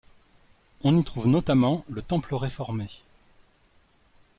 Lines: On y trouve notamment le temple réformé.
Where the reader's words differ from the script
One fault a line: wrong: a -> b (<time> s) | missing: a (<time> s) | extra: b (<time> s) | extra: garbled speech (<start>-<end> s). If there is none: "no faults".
no faults